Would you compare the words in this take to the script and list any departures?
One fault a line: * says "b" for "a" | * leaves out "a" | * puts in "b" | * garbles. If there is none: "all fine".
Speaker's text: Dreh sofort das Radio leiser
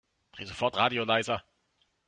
* leaves out "das"